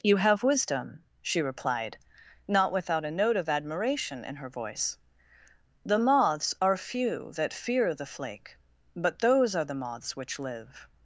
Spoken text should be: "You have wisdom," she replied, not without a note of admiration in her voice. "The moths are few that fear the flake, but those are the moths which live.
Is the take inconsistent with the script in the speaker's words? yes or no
no